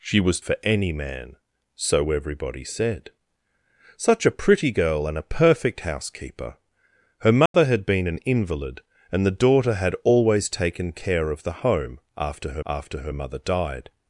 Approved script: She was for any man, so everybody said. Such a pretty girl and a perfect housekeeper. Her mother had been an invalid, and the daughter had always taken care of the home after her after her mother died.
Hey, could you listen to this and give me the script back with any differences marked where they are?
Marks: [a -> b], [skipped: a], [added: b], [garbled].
She was for any man, so everybody said. Such a pretty girl and a perfect housekeeper. Her mother had been an invalid, and the daughter had always taken care of the home after her after her mother died.